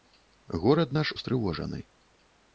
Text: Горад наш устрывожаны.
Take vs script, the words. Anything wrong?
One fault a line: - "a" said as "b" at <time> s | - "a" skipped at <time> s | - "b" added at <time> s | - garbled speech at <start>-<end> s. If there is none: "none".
none